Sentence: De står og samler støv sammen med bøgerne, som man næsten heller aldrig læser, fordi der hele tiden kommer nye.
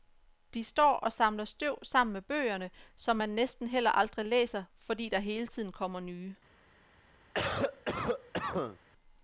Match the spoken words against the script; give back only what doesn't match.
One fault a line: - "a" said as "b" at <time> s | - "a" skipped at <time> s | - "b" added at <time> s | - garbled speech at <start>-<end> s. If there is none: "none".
none